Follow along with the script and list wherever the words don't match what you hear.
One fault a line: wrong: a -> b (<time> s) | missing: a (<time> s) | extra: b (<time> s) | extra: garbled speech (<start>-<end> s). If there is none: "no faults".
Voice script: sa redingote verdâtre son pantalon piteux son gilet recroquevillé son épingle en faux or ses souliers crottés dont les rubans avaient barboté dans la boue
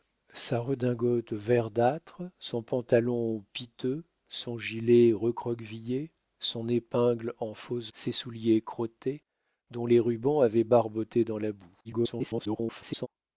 missing: or (7.9 s)
extra: garbled speech (11.8-13.1 s)